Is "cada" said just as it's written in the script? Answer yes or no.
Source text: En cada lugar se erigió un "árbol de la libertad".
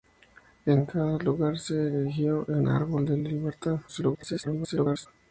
yes